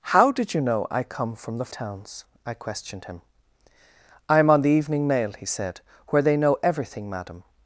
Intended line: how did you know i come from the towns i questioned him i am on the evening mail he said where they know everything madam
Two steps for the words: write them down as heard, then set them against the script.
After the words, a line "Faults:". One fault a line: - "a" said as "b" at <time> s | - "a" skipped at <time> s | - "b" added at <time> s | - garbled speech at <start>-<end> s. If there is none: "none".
how did you know i come from the towns i questioned him i am on the evening mail he said where they know everything madam
Faults:
none